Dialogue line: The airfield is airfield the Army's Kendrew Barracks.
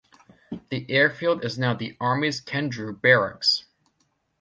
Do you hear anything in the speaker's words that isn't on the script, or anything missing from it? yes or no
yes